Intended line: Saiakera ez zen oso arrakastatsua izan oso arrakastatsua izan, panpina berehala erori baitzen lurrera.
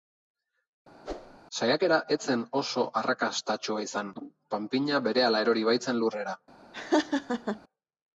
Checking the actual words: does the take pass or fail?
fail